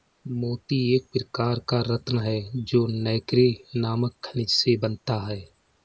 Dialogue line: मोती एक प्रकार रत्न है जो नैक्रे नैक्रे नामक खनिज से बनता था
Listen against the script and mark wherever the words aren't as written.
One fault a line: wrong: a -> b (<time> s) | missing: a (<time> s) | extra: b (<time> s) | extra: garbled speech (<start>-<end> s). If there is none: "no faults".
extra: का (1.7 s)
missing: नैक्रे (3.5 s)
wrong: था -> है (5.3 s)